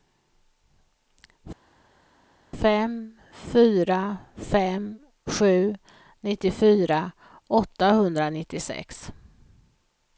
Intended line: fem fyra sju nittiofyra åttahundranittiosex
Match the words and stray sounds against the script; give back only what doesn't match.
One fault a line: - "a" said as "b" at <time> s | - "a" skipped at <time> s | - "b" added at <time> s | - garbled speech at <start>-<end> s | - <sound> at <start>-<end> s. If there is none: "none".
- "fem" added at 4.4 s